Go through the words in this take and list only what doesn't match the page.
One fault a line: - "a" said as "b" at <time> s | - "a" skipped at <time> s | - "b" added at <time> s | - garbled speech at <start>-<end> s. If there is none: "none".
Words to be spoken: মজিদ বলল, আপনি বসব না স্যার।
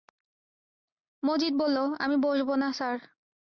- "আপনি" said as "আমি" at 2.0 s